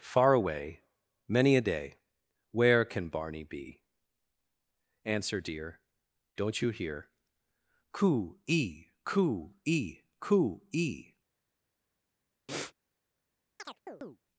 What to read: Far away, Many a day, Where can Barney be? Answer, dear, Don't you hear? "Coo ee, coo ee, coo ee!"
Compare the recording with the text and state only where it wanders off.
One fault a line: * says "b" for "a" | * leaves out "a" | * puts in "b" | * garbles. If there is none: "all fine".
all fine